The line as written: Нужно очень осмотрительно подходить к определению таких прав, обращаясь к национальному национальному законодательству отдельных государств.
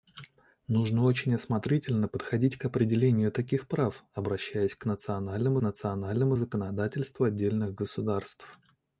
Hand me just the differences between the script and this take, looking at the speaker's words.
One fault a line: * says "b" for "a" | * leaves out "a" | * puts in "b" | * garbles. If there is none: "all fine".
all fine